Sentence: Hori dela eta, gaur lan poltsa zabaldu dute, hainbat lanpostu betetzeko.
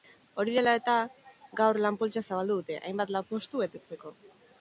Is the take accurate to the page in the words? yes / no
yes